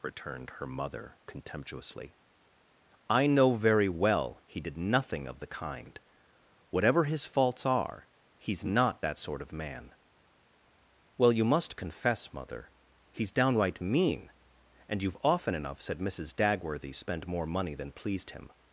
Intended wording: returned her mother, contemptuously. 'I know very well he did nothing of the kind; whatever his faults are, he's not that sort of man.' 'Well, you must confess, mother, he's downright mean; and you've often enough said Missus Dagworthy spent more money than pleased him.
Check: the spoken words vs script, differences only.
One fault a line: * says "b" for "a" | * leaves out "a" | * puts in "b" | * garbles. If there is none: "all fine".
all fine